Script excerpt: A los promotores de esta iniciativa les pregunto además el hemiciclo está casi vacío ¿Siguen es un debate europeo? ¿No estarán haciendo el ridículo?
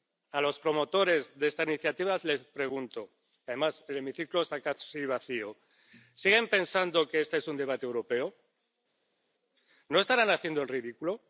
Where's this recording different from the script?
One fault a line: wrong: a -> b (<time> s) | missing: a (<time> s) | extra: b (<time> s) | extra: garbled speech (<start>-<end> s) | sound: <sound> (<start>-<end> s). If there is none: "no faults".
extra: pensando que este (6.5 s)